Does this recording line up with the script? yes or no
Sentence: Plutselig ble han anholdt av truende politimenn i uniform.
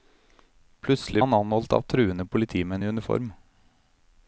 no